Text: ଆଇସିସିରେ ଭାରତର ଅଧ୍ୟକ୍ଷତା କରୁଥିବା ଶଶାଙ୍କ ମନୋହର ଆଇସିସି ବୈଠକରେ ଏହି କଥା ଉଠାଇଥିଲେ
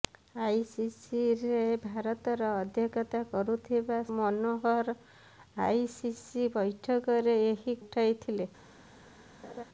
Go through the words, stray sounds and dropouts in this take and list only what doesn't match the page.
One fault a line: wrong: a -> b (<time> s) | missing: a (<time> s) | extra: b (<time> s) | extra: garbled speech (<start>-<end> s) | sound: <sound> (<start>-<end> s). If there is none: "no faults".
missing: ଶଶାଙ୍କ (4.0 s)
missing: କଥା (7.8 s)
sound: laugh (9.4-9.6 s)